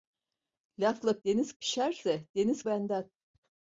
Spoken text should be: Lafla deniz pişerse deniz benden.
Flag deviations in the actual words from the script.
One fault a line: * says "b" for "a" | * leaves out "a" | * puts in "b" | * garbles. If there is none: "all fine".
all fine